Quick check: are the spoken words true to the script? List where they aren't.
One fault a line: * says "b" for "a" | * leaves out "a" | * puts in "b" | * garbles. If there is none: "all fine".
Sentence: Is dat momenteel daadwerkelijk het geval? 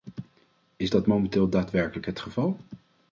all fine